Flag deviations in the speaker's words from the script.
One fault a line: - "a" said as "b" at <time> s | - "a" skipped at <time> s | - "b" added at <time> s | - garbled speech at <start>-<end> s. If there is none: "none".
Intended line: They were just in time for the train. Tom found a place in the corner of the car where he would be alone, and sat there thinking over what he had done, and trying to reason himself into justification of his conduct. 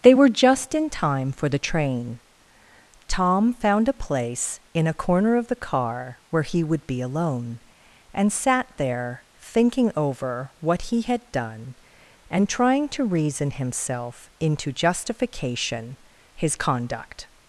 - "the" said as "a" at 4.9 s
- "of" skipped at 16.0 s